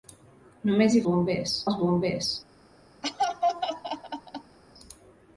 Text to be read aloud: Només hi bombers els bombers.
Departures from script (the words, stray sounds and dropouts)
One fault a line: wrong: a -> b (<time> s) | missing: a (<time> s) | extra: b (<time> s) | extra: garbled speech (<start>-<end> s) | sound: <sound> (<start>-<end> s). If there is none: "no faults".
sound: laugh (3.0-4.6 s)